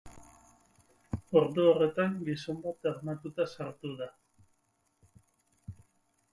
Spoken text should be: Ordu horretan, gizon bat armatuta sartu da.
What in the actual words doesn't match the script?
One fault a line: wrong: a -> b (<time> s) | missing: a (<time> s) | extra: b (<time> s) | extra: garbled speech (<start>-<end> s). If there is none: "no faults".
no faults